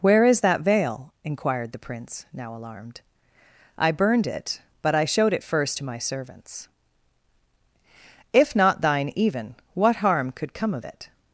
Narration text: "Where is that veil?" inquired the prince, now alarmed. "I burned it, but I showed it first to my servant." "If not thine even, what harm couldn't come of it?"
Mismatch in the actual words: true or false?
true